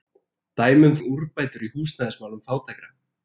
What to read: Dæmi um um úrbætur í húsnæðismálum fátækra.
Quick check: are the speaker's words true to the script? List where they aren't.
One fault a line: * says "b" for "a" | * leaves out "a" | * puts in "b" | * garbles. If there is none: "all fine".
all fine